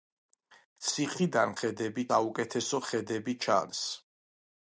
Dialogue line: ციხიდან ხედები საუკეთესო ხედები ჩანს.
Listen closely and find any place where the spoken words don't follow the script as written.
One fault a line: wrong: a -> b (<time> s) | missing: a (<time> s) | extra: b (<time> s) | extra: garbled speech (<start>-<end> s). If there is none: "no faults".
no faults